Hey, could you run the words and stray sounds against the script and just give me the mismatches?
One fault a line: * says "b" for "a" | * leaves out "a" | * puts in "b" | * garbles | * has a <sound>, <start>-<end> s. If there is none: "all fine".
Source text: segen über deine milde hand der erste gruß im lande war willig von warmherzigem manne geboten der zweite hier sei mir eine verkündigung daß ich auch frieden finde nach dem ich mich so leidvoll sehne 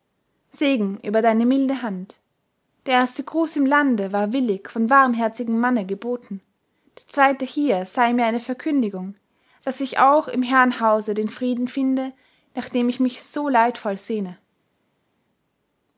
* puts in "im herrenhause den"